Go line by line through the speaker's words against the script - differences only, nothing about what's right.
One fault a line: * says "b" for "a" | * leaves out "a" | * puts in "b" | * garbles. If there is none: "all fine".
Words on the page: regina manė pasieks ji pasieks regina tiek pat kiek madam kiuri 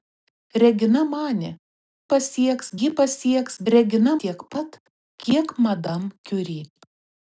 all fine